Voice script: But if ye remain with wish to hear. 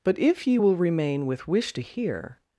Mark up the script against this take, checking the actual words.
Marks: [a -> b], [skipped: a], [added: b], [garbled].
But if ye [added: will] remain with wish to hear.